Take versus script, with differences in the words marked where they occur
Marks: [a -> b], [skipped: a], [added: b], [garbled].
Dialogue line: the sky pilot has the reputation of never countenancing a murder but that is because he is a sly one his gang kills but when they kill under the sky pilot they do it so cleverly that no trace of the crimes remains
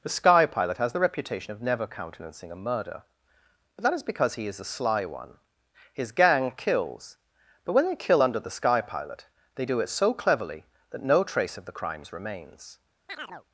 the sky pilot has the reputation of never countenancing a murder but that is because he is a sly one his gang kills but when they kill under the sky pilot they do it so cleverly that no trace of the crimes remains